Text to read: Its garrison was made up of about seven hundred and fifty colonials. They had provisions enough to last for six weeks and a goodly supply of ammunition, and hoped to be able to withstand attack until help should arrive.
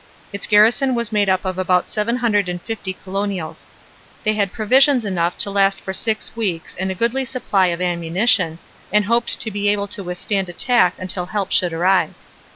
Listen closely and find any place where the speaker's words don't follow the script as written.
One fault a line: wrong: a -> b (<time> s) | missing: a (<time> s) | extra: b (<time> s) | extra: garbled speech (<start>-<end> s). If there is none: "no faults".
no faults